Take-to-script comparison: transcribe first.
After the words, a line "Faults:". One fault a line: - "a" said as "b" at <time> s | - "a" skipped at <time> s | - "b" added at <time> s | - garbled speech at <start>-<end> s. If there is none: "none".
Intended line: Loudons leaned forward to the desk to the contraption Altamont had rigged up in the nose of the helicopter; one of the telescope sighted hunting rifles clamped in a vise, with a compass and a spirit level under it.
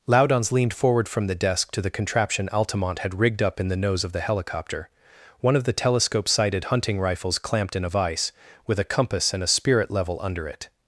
Loudons leaned forward from the desk to the contraption Altamont had rigged up in the nose of the helicopter; one of the telescope sighted hunting rifles clamped in a vise, with a compass and a spirit level under it.
Faults:
- "to" said as "from" at 1.1 s